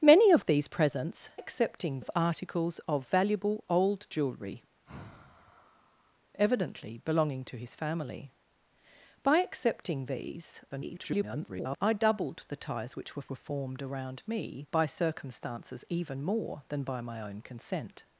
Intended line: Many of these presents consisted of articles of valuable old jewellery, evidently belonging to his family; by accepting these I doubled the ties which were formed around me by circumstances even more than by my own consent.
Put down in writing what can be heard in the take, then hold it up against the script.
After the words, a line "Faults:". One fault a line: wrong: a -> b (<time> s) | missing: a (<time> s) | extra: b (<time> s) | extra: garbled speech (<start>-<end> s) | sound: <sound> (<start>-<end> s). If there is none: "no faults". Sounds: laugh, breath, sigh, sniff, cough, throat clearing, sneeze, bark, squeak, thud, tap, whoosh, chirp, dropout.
Many of these presents accepting of articles of valuable old jewellery, evidently belonging to his family; by accepting these [garbled] I doubled the ties which were were formed around me by circumstances even more than by my own consent.
Faults:
wrong: consisted -> accepting (1.3 s)
sound: sigh (4.8-6.2 s)
extra: garbled speech (10.7-11.8 s)
extra: were (13.3 s)